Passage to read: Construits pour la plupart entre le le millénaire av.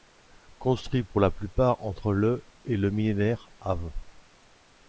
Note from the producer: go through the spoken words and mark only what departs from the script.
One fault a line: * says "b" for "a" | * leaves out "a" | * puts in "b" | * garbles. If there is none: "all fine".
* puts in "et"